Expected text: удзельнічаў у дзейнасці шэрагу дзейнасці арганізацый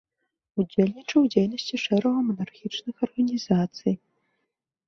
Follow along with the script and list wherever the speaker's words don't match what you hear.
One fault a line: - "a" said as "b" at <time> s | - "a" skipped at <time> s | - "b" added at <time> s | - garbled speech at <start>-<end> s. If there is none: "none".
- "дзейнасці" said as "манархічных" at 2.3 s